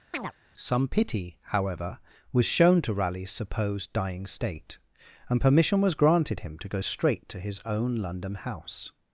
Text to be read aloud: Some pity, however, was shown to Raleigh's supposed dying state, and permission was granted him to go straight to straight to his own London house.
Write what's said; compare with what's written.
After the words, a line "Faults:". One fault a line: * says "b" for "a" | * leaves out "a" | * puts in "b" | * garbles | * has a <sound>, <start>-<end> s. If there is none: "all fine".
Some pity, however, was shown to Raleigh's supposed dying state, and permission was granted him to go straight to his own London house.
Faults:
* has a chirp, 0.1-0.3 s
* leaves out "straight to"